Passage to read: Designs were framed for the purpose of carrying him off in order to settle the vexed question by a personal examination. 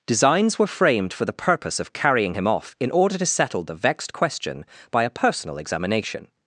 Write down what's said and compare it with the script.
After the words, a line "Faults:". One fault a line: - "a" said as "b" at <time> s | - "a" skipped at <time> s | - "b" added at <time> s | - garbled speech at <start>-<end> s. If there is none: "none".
Designs were framed for the purpose of carrying him off in order to settle the vexed question by a personal examination.
Faults:
none